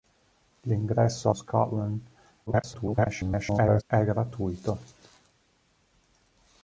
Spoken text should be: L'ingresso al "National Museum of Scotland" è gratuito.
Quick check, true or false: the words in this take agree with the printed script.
false